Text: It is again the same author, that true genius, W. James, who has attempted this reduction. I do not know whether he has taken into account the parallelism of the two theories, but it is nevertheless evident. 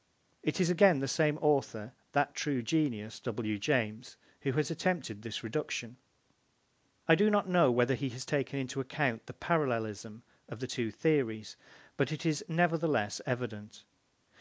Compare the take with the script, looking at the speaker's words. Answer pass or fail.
pass